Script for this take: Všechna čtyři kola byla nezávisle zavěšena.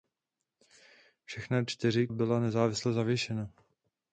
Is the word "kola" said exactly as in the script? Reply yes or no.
no